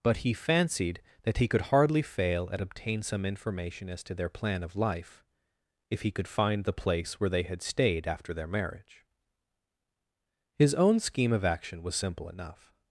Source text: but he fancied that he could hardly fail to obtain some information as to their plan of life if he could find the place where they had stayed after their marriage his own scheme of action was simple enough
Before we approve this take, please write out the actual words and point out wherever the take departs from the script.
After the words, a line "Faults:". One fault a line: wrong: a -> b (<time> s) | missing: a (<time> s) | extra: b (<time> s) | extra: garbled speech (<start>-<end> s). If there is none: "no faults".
but he fancied that he could hardly fail at obtain some information as to their plan of life if he could find the place where they had stayed after their marriage his own scheme of action was simple enough
Faults:
wrong: to -> at (2.5 s)